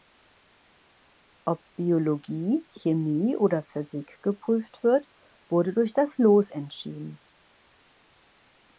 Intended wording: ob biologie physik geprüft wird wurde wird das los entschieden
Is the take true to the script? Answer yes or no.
no